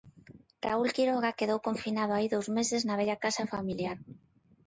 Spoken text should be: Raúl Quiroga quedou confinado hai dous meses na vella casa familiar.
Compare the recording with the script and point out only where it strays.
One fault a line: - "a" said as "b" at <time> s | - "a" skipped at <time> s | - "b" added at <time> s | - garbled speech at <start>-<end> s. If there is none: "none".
none